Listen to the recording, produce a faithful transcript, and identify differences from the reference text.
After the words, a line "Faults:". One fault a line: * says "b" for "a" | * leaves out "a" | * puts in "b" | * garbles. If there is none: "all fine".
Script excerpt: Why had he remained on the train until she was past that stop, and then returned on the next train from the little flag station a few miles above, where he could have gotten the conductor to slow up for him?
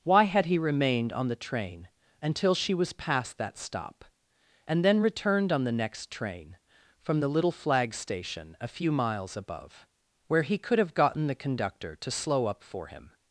Why had he remained on the train until she was past that stop, and then returned on the next train from the little flag station a few miles above, where he could have gotten the conductor to slow up for him?
Faults:
all fine